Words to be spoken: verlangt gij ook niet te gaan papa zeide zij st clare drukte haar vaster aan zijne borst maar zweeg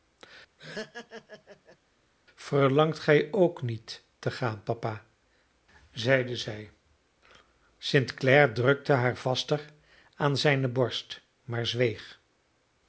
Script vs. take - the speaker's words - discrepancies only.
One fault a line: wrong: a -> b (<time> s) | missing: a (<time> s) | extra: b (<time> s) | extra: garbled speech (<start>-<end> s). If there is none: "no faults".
no faults